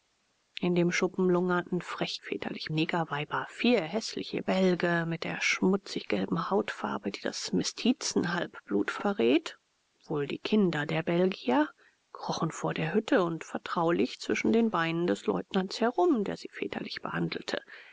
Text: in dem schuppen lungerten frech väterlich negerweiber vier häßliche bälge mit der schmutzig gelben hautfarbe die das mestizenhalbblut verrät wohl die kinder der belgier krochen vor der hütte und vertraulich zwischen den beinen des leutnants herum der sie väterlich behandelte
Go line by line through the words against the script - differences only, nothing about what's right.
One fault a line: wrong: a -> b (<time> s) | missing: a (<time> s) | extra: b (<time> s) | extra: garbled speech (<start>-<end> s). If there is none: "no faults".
no faults